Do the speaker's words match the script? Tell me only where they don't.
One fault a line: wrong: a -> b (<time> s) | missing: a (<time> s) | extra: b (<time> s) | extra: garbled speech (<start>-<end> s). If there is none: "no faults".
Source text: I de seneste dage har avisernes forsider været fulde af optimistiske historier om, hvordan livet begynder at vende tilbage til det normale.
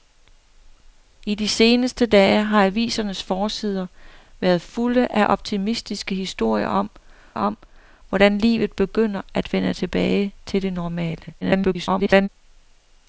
extra: om (7.3 s)
extra: garbled speech (11.4-12.3 s)